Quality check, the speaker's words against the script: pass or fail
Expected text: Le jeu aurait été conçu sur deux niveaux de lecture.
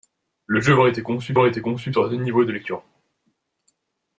fail